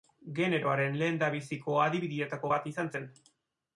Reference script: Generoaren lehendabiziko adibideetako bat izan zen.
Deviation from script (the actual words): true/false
false